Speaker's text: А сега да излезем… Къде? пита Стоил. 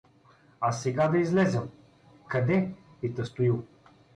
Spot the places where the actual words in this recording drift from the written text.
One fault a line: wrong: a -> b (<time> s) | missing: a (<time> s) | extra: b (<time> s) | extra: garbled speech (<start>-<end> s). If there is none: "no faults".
no faults